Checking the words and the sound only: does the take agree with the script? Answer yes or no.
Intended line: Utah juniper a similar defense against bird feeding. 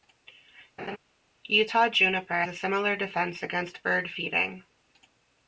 no